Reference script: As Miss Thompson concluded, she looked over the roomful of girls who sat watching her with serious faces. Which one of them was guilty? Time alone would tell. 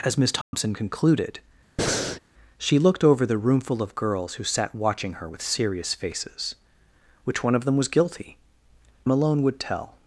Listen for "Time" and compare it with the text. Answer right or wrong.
wrong